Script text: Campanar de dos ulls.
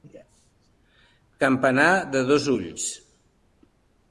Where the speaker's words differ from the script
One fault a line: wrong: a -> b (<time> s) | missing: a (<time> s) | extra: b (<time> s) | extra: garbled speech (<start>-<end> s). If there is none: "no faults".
no faults